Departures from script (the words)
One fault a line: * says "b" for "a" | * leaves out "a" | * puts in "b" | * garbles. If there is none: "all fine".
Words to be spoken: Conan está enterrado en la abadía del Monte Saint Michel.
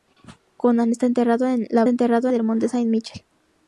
* says "enterrado" for "abadía"